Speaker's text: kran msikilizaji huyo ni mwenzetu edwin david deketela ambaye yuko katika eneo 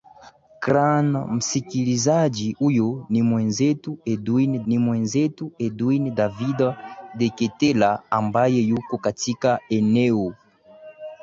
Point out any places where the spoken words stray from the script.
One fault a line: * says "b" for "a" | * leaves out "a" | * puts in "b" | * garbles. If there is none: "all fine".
* puts in "ni mwenzetu edwin"